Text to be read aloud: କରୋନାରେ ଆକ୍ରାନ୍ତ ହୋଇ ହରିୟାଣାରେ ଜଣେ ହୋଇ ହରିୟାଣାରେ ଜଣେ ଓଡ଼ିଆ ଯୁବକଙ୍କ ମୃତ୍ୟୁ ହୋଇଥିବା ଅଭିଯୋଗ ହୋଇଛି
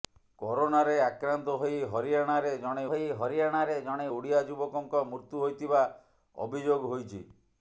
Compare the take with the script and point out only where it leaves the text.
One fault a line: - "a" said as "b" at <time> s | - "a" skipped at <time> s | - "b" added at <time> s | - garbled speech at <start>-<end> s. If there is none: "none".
none